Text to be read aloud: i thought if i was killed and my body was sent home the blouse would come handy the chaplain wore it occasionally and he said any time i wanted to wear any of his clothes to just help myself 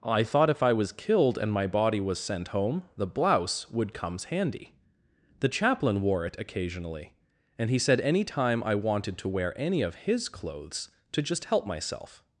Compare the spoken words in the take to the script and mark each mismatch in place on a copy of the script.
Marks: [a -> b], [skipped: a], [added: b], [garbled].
i thought if i was killed and my body was sent home the blouse would [come -> comes] handy the chaplain wore it occasionally and he said any time i wanted to wear any of his clothes to just help myself